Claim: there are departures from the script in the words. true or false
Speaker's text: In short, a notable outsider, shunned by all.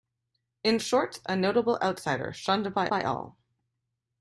true